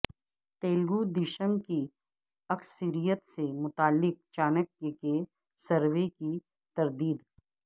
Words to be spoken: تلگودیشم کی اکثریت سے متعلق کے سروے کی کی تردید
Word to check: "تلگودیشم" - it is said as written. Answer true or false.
true